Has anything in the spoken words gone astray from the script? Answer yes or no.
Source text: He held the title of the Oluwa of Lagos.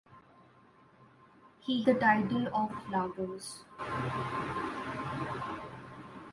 yes